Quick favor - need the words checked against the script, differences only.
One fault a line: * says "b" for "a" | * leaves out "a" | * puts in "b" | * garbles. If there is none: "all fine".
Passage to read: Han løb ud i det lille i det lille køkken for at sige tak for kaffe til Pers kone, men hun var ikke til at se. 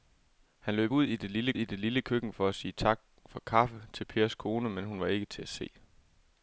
all fine